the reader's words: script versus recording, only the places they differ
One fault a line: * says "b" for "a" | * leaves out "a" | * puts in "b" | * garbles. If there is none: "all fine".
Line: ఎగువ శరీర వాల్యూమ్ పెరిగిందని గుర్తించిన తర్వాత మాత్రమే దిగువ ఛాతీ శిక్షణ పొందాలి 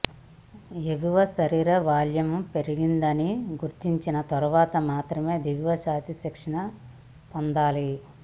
all fine